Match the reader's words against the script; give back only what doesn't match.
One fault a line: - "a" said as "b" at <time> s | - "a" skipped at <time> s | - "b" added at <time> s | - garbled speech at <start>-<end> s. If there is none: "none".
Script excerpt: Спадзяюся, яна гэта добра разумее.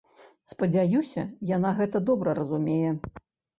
none